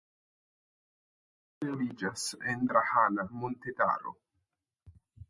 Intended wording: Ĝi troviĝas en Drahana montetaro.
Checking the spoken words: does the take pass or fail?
pass